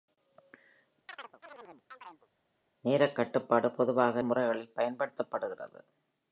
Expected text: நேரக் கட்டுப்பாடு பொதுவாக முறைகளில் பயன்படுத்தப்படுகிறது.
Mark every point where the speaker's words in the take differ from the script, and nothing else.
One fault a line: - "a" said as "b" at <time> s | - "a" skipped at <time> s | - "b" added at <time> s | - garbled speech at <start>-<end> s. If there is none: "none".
none